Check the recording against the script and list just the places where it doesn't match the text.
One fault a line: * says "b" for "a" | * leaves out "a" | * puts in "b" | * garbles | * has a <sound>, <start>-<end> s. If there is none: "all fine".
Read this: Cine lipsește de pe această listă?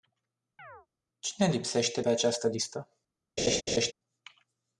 * has a chirp, 0.6-0.9 s
* leaves out "de"
* has a laugh, 3.4-3.9 s